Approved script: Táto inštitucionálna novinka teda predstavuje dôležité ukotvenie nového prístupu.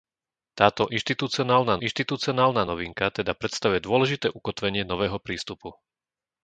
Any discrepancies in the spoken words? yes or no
yes